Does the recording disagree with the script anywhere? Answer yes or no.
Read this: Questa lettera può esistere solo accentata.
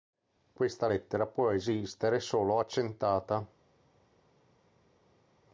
no